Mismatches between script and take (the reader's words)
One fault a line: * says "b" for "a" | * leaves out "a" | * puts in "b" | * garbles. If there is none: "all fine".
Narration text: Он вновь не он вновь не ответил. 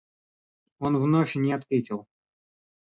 * leaves out "он вновь не"